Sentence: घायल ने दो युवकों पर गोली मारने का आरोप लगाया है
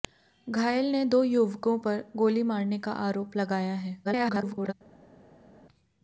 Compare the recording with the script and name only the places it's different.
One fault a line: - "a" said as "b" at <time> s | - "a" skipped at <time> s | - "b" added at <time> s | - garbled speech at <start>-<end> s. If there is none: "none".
- garbled speech at 4.0-4.7 s